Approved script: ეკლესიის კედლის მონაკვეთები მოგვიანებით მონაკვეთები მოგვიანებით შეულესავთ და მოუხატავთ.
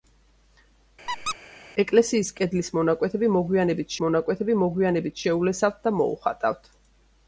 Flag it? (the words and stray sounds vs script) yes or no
yes